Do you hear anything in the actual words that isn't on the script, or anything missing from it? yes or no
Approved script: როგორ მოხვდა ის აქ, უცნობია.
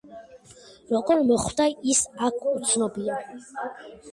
no